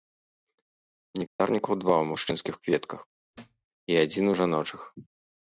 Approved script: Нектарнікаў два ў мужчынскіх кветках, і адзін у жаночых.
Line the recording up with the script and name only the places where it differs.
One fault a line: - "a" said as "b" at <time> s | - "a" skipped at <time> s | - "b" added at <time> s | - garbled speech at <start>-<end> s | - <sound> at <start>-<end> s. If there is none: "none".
- dropout at 1.3-1.4 s
- thud at 3.3-3.7 s